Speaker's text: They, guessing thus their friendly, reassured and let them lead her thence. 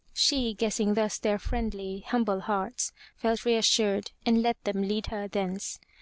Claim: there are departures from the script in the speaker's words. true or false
true